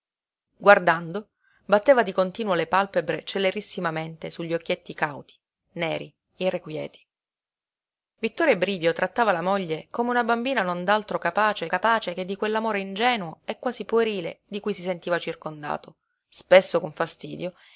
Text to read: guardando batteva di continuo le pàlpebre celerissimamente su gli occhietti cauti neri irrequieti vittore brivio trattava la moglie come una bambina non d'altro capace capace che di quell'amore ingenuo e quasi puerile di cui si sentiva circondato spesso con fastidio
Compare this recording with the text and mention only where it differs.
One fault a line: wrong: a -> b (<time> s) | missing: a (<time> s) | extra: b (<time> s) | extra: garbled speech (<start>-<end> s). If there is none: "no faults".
no faults